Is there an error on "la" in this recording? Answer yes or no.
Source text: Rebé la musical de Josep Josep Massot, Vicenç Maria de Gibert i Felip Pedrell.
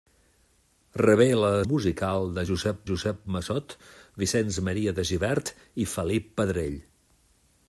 no